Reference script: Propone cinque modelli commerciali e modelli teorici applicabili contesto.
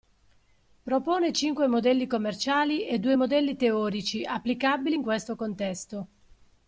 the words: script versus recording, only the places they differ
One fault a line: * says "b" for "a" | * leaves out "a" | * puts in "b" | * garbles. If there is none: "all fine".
* puts in "due"
* puts in "in questo"